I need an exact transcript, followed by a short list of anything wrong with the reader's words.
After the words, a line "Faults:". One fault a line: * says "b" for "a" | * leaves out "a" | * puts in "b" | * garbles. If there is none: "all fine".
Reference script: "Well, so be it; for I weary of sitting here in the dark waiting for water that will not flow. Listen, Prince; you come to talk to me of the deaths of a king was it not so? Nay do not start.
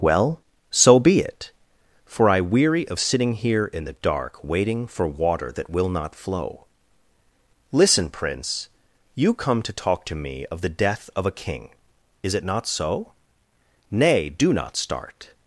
"Well, so be it; for I weary of sitting here in the dark waiting for water that will not flow. Listen, Prince; you come to talk to me of the death of a king is it not so? Nay do not start.
Faults:
* says "death" for "deaths"
* says "is" for "was"